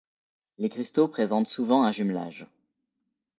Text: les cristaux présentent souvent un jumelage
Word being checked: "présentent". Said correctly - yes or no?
yes